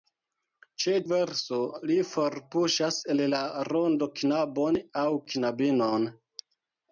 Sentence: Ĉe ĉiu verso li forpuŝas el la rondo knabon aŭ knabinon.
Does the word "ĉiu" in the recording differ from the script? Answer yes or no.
yes